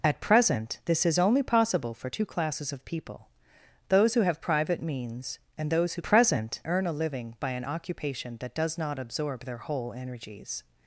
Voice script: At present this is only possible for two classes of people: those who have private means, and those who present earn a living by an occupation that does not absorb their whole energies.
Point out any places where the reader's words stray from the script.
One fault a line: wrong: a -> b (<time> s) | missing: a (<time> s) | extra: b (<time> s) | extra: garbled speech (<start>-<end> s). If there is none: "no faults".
no faults